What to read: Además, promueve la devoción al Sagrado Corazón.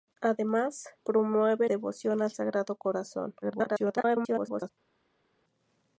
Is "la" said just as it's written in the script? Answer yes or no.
no